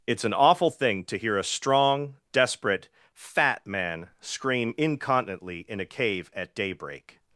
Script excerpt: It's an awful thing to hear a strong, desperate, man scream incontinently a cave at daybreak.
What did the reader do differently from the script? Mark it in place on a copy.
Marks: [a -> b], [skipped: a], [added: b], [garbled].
It's an awful thing to hear a strong, desperate, [added: fat] man scream incontinently [added: in] a cave at daybreak.